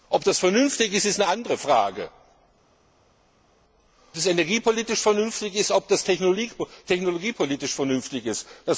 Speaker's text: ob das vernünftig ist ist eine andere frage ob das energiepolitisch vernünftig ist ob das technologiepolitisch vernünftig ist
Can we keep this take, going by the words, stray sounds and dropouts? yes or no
no